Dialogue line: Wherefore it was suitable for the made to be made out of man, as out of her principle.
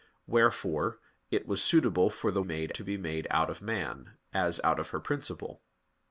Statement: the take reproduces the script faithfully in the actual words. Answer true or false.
true